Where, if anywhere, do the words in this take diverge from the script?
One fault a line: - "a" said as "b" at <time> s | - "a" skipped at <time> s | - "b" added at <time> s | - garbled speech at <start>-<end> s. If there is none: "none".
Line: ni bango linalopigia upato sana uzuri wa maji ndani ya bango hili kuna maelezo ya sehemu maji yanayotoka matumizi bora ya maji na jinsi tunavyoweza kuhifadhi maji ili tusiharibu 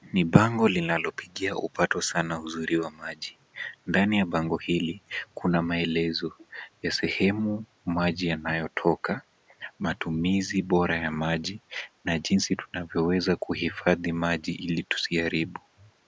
none